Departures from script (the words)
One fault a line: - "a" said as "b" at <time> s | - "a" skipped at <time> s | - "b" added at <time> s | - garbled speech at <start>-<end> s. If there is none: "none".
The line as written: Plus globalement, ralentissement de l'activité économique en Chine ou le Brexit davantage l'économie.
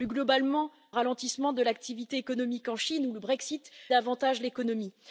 none